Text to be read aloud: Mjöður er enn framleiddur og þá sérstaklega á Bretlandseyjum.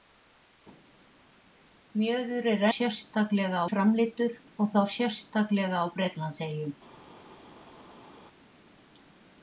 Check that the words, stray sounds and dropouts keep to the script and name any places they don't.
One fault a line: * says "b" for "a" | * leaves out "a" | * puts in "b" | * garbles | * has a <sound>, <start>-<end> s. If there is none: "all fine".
* says "sérstaklega" for "enn"